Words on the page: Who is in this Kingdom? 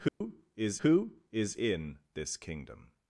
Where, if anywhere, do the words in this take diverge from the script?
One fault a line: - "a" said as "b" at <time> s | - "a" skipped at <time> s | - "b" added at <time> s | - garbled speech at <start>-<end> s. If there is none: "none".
- "who is" added at 0.8 s